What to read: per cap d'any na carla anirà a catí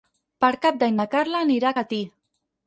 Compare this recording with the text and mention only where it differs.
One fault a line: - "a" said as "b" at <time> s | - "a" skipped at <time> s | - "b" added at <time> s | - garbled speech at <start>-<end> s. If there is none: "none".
none